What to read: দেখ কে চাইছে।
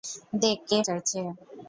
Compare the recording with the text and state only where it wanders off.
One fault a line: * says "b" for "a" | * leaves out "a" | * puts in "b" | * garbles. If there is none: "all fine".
all fine